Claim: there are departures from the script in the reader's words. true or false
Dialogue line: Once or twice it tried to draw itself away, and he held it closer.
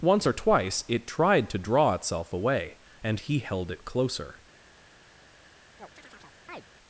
false